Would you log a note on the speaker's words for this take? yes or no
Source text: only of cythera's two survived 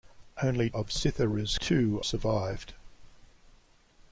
no